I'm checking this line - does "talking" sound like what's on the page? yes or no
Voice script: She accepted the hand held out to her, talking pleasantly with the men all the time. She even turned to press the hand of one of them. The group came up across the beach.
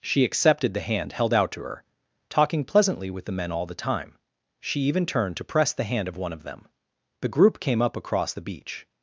yes